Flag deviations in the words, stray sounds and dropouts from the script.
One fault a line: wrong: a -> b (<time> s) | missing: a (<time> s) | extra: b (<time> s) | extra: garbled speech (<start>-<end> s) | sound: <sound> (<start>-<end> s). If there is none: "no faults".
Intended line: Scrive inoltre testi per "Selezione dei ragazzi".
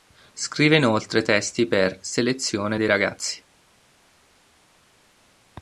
no faults